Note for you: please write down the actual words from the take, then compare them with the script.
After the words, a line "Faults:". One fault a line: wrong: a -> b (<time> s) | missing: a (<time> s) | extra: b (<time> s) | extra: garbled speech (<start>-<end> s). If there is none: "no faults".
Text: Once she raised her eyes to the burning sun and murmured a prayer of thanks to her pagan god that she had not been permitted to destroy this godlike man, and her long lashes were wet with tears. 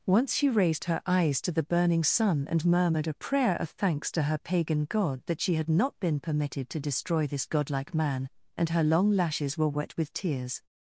Once she raised her eyes to the burning sun and murmured a prayer of thanks to her pagan god that she had not been permitted to destroy this godlike man, and her long lashes were wet with tears.
Faults:
no faults